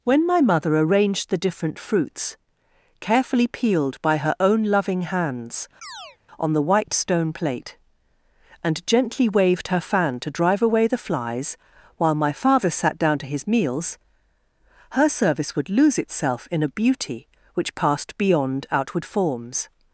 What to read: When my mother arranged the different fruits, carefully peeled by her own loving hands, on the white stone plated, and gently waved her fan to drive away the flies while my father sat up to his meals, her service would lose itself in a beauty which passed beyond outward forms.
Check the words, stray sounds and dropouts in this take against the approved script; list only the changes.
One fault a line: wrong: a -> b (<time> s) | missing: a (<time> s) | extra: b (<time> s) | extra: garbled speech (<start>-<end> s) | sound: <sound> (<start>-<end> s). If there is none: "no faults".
sound: chirp (5.8-6.2 s)
wrong: plated -> plate (7.3 s)
wrong: up -> down (13.0 s)